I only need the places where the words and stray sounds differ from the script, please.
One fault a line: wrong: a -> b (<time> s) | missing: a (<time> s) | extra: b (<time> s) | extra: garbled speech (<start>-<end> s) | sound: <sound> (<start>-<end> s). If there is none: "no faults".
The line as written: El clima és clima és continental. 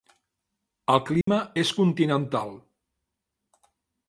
sound: dropout (1.2-1.3 s)
missing: clima és (1.7 s)